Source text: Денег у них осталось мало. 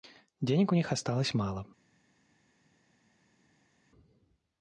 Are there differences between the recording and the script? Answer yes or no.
no